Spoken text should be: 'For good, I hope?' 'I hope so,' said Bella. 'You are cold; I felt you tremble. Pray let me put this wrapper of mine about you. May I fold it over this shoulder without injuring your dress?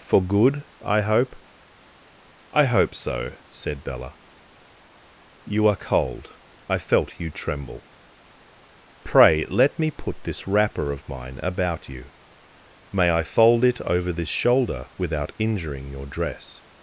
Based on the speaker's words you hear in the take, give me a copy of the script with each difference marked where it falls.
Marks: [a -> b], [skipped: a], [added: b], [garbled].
'For good, I hope?' 'I hope so,' said Bella. 'You are cold; I felt you tremble. Pray let me put this wrapper of mine about you. May I fold it over this shoulder without injuring your dress?